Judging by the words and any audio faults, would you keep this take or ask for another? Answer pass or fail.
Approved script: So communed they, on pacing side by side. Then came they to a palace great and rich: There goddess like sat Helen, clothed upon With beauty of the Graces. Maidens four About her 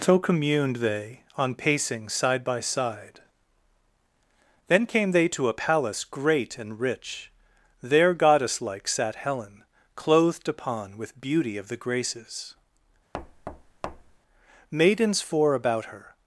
fail